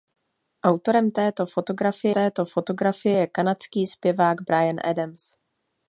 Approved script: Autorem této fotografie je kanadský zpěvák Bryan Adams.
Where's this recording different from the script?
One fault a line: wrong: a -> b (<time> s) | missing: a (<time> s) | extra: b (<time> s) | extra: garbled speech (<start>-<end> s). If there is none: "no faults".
extra: této fotografie (2.1 s)